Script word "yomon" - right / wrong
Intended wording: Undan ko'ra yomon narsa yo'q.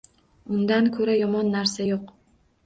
right